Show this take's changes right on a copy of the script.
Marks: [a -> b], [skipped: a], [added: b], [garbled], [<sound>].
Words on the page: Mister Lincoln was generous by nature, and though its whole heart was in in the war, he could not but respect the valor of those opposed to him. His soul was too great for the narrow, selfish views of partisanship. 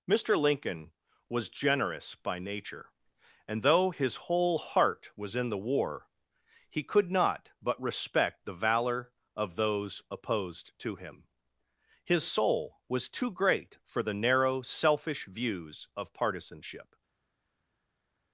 Mister Lincoln was generous by nature, and though [its -> his] whole heart was in [skipped: in] the war, he could not but respect the valor of those opposed to him. His soul was too great for the narrow, selfish views of partisanship.